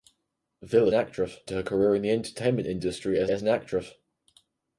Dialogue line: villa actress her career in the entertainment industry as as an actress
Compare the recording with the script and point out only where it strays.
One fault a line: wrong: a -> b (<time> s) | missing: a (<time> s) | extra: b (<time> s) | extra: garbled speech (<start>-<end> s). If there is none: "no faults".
no faults